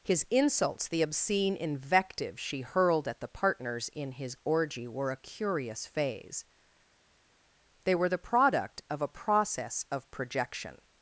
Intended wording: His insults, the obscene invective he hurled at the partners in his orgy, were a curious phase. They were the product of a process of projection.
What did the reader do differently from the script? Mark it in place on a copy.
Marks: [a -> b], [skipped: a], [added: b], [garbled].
His insults, the obscene invective [he -> she] hurled at the partners in his orgy, were a curious phase. They were the product of a process of projection.